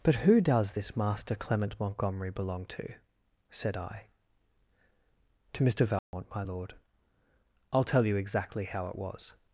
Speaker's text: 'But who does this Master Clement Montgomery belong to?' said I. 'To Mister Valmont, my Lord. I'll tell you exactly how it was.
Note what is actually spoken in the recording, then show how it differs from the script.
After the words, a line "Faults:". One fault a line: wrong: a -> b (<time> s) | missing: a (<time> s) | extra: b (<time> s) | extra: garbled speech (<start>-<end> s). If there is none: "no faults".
'But who does this Master Clement Montgomery belong to?' said I. 'To Mister Valmont, my Lord. I'll tell you exactly how it was.
Faults:
no faults